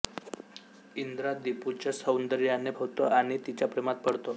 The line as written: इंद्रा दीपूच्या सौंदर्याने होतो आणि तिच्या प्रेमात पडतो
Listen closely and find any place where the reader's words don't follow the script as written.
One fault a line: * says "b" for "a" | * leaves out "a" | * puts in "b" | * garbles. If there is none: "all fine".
all fine